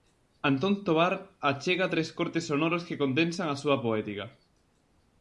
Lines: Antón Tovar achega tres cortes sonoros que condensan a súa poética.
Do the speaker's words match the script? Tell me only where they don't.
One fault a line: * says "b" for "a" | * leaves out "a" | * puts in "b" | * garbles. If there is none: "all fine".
all fine